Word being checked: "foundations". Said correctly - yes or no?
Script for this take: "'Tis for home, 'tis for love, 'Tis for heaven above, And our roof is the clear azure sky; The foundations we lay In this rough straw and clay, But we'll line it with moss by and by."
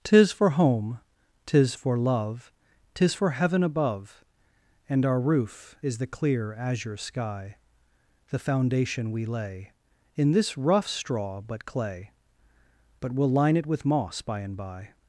no